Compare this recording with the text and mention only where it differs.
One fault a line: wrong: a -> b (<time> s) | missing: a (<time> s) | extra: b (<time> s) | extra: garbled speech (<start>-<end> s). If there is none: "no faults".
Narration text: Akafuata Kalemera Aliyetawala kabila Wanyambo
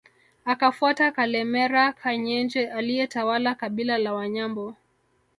extra: Kanyenje (1.9 s)
extra: la (4.0 s)